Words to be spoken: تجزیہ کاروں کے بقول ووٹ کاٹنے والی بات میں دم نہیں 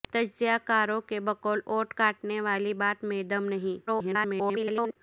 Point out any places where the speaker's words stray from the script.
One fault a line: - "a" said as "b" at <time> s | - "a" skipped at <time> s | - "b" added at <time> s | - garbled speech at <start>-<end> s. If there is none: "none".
- garbled speech at 3.9-5.0 s